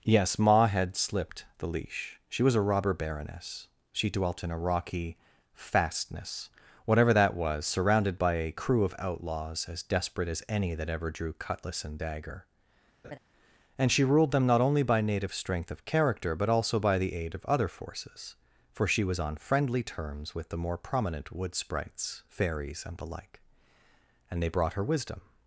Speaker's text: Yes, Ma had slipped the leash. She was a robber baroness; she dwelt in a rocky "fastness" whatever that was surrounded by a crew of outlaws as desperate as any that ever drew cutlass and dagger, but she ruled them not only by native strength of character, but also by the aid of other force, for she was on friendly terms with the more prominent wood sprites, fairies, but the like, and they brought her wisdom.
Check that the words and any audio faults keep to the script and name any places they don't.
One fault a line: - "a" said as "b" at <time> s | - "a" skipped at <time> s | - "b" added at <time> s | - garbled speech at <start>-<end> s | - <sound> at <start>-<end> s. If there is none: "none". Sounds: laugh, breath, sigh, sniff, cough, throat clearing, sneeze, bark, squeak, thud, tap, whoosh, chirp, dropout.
- laugh at 13.0-13.2 s
- "but" said as "and" at 13.8 s
- "force" said as "forces" at 17.7 s
- "but" said as "and" at 22.8 s